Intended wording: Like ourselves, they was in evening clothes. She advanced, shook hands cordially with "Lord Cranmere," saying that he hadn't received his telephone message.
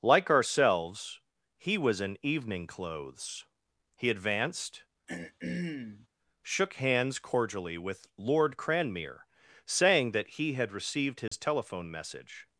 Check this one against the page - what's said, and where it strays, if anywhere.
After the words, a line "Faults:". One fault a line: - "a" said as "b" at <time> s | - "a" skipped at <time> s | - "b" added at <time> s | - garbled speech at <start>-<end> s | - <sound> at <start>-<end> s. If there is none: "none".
Like ourselves, he was in evening clothes. He advanced, shook hands cordially with "Lord Cranmere," saying that he had received his telephone message.
Faults:
- "they" said as "he" at 1.6 s
- "She" said as "He" at 4.0 s
- throat clearing at 5.1-6.1 s
- "hadn't" said as "had" at 10.5 s
- dropout at 11.3-11.3 s